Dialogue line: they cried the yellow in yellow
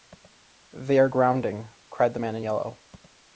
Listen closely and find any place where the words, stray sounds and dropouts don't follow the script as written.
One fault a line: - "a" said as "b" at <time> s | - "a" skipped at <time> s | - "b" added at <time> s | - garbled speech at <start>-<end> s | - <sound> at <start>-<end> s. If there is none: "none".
- "are grounding" added at 1.0 s
- "yellow" said as "man" at 2.2 s